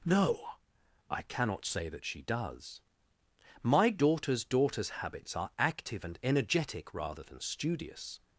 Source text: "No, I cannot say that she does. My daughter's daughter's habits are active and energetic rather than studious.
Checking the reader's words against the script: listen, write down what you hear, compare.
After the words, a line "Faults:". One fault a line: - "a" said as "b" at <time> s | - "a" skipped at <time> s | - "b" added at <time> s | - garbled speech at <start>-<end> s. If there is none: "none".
"No, I cannot say that she does. My daughter's daughter's habits are active and energetic rather than studious.
Faults:
none